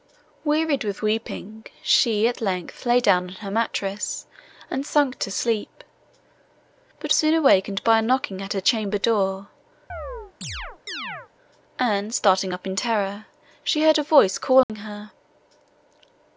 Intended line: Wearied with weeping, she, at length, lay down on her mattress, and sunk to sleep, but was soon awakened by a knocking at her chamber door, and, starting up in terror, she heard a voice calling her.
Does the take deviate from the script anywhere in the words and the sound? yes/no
yes